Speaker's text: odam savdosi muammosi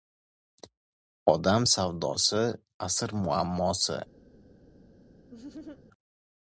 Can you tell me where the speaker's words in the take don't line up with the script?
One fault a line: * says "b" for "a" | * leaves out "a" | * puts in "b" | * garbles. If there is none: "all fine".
* puts in "asr"